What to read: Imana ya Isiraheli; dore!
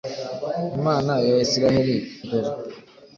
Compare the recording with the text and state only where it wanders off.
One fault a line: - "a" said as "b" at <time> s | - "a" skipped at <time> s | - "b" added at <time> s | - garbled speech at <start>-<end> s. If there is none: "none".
none